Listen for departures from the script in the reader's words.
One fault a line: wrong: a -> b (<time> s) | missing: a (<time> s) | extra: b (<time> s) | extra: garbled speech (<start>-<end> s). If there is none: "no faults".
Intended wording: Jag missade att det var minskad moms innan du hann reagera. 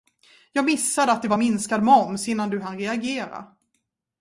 no faults